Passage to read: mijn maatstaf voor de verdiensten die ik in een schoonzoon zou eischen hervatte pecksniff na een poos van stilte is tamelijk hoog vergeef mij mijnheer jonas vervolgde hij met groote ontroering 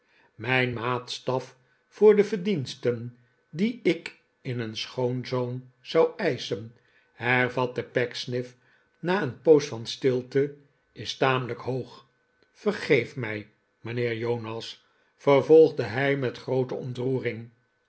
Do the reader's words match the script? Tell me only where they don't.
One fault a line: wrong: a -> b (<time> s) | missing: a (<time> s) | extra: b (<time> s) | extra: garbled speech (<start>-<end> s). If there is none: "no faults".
no faults